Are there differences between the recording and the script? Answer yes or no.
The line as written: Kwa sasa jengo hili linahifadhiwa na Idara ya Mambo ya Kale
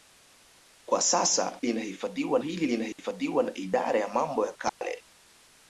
yes